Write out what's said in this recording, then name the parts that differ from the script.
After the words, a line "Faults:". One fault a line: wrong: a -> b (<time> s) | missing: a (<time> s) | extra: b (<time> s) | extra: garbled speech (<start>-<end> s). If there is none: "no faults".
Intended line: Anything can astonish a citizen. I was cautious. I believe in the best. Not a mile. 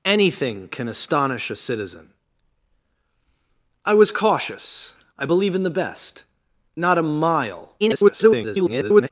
Anything can astonish a citizen. I was cautious. I believe in the best. Not a mile. [garbled]
Faults:
extra: garbled speech (7.8-9.1 s)